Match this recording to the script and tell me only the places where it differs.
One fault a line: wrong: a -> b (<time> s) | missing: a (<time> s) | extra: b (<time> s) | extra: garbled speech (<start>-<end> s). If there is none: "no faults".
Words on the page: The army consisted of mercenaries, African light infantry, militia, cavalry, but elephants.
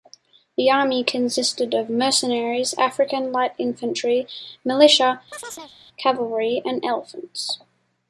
wrong: but -> and (6.6 s)